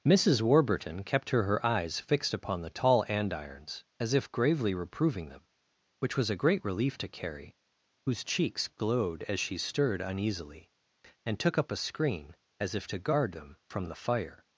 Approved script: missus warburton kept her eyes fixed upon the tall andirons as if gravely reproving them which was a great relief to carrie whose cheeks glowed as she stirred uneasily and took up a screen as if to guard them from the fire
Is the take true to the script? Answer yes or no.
no